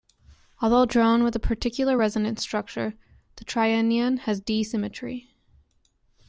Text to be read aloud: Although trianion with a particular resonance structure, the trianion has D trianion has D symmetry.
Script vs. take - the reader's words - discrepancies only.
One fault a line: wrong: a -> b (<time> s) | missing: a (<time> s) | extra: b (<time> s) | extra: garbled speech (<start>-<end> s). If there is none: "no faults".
wrong: trianion -> drawn (0.9 s)
missing: trianion has D (4.6 s)